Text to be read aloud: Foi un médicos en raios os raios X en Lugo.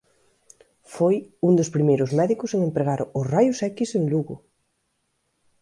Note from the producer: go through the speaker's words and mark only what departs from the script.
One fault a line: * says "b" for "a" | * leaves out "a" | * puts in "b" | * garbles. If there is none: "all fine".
* puts in "dos primeiros"
* says "empregar" for "raios"